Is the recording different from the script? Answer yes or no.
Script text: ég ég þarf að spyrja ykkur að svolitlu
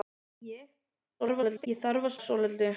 yes